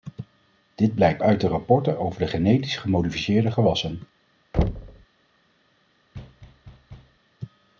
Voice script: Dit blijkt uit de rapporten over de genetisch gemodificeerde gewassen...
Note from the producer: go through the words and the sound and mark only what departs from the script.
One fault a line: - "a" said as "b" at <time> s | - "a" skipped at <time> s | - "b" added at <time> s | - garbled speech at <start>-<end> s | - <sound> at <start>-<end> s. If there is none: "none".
- thud at 4.5-5.1 s
- thud at 6.1-7.2 s